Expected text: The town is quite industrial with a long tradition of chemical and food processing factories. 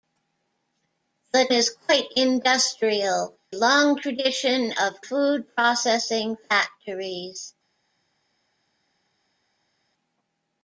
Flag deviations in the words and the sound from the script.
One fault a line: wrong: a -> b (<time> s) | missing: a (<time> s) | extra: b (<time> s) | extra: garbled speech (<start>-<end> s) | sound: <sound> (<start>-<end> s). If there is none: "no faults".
missing: town (1.5 s)
missing: with a (3.4 s)
missing: chemical and (5.0 s)